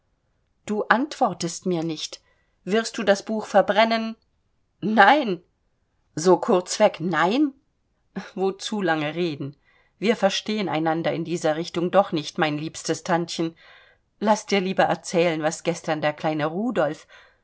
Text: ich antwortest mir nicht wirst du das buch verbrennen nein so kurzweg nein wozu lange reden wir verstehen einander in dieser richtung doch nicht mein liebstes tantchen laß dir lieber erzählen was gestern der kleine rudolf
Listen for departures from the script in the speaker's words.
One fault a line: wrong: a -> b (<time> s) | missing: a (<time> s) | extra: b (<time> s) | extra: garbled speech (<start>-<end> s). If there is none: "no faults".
wrong: ich -> du (0.7 s)